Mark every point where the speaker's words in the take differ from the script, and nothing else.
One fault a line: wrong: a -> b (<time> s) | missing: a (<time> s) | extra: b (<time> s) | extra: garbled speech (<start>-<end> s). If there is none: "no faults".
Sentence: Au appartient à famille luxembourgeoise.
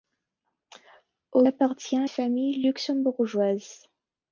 no faults